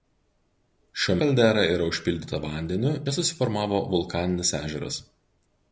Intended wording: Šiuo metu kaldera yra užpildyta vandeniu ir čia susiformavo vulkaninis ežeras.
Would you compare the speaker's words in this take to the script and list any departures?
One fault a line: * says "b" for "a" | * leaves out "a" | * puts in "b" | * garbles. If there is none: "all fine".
* leaves out "metu"
* leaves out "ir"